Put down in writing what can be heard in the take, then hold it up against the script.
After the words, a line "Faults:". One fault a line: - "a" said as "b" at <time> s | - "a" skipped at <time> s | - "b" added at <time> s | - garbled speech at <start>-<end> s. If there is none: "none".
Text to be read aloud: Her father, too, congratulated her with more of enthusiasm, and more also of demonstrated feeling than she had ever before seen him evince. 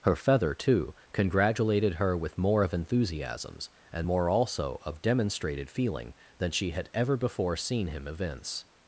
Her feather, too, congratulated her with more of enthusiasms, and more also of demonstrated feeling than she had ever before seen him evince.
Faults:
- "father" said as "feather" at 0.1 s
- "enthusiasm" said as "enthusiasms" at 2.7 s